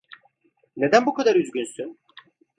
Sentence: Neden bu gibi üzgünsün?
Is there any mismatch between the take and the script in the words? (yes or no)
yes